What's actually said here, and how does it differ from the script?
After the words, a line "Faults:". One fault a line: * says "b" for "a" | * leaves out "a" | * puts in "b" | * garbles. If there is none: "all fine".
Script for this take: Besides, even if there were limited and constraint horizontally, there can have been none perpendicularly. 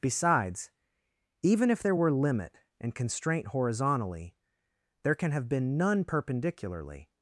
Besides, even if there were limit and constraint horizontally, there can have been none perpendicularly.
Faults:
* says "limit" for "limited"